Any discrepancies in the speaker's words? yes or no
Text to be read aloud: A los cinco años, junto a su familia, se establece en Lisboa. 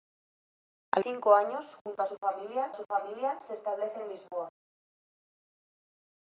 yes